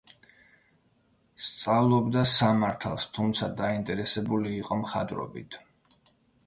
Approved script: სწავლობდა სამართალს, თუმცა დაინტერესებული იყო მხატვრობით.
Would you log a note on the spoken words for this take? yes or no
no